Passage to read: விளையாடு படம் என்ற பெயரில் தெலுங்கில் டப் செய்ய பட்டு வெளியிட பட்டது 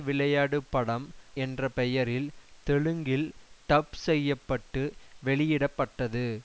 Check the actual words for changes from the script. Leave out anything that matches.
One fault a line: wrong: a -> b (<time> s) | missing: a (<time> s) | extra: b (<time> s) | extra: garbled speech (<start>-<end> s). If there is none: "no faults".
no faults